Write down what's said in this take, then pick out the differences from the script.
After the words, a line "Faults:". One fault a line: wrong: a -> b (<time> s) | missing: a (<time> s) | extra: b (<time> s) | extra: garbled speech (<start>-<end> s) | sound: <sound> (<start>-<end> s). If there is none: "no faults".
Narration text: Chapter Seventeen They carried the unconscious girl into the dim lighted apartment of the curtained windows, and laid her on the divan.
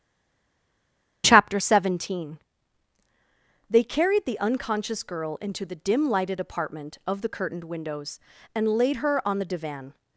Chapter Seventeen They carried the unconscious girl into the dim lighted apartment of the curtained windows, and laid her on the divan.
Faults:
no faults